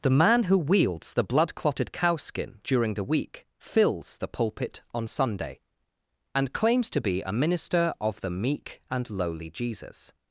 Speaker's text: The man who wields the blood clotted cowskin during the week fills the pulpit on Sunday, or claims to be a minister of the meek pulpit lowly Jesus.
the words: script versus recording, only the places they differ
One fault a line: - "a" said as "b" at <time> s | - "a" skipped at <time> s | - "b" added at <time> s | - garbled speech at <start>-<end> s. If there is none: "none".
- "or" said as "and" at 6.3 s
- "pulpit" said as "and" at 8.9 s